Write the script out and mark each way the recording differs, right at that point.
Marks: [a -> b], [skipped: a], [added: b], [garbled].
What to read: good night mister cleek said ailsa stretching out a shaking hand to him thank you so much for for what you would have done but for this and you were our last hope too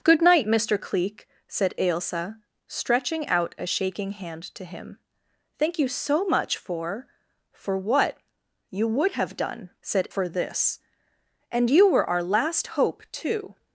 good night mister cleek said ailsa stretching out a shaking hand to him thank you so much for for what you would have done [but -> said] for this and you were our last hope too